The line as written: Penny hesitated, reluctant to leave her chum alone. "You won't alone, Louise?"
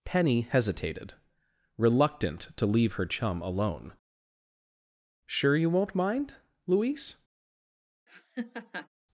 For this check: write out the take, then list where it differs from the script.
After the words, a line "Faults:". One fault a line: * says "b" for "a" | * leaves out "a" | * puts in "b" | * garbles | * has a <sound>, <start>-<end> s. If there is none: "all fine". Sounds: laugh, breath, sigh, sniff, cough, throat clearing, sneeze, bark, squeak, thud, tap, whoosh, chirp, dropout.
Penny hesitated, reluctant to leave her chum alone. "Sure you won't mind, Louise?"
Faults:
* puts in "Sure"
* says "mind" for "alone"
* has a laugh, 8.1-8.9 s